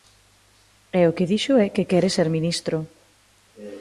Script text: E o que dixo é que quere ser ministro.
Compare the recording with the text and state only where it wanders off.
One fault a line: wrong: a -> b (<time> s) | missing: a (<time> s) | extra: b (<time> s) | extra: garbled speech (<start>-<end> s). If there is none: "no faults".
no faults